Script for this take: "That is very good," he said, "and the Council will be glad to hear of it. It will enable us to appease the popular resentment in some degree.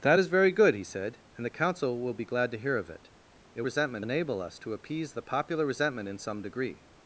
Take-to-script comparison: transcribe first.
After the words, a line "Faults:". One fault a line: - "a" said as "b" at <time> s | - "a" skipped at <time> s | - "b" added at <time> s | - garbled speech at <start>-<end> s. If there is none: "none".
"That is very good," he said, "and the Council will be glad to hear of it. It resentment enable us to appease the popular resentment in some degree.
Faults:
- "will" said as "resentment" at 3.6 s